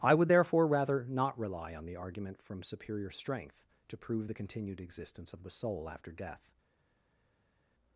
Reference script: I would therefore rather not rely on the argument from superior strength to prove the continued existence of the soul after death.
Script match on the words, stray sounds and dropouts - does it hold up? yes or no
yes